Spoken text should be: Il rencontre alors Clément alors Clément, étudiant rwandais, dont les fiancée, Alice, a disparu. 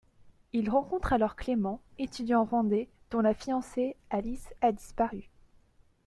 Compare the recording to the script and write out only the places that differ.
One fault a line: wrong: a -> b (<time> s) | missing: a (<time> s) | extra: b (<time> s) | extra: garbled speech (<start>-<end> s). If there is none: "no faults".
missing: alors Clément (1.8 s)
wrong: les -> la (3.2 s)